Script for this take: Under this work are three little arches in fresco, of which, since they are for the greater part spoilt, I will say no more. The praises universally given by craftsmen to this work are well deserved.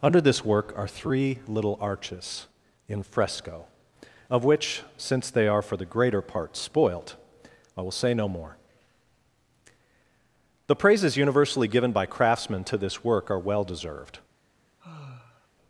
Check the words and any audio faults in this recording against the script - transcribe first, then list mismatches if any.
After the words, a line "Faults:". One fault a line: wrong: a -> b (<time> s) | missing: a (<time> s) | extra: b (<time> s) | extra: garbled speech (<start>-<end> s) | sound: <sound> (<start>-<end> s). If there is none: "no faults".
Under this work are three little arches in fresco, of which, since they are for the greater part spoilt, I will say no more. The praises universally given by craftsmen to this work are well deserved.
Faults:
sound: sigh (14.8-15.5 s)